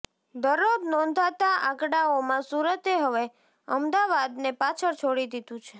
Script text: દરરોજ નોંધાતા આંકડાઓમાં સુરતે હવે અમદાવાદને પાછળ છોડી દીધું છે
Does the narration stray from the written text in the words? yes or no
no